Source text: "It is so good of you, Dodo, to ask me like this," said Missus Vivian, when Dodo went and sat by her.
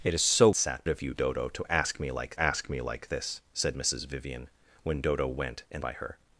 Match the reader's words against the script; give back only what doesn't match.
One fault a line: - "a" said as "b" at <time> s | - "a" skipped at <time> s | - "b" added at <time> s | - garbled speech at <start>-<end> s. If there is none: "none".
- "good" said as "sat" at 0.5 s
- "ask me like" added at 2.4 s
- "sat" skipped at 5.8 s